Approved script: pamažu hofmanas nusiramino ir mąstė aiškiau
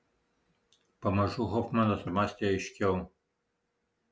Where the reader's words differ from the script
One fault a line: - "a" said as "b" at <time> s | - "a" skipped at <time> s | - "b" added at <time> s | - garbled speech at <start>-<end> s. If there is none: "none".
- "nusiramino" skipped at 2.1 s